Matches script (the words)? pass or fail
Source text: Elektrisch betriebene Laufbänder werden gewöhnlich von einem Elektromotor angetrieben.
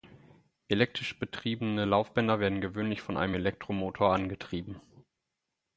pass